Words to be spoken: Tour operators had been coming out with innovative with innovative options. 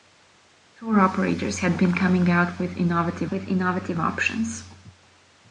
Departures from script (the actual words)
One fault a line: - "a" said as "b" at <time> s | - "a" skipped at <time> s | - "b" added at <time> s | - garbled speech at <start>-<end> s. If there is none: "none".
none